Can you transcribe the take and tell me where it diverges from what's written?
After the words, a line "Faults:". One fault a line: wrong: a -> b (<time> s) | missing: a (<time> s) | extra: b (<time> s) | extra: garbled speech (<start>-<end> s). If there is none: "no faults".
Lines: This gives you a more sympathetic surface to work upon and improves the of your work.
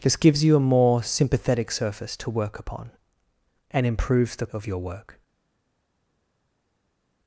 This gives you a more sympathetic surface to work upon and improves the of your work.
Faults:
no faults